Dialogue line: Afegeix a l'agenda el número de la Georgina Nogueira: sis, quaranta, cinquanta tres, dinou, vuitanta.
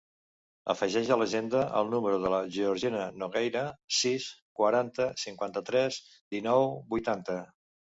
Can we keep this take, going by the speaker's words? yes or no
yes